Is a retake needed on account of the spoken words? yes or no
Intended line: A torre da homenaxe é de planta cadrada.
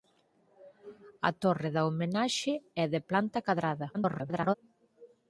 yes